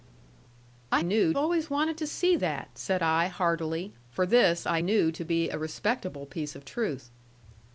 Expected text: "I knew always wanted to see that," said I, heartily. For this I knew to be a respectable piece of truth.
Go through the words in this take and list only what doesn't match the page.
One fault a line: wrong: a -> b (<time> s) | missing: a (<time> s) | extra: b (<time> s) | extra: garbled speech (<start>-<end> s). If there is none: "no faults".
no faults